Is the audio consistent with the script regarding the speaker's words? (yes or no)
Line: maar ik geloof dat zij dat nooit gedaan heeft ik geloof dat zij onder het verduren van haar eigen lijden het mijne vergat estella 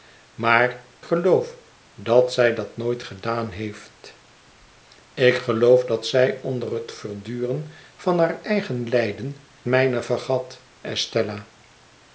no